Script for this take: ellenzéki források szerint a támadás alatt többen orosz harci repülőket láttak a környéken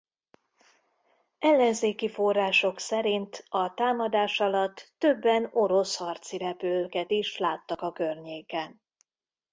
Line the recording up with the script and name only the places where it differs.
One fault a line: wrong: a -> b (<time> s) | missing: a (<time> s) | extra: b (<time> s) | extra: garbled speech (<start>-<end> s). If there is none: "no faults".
extra: is (7.1 s)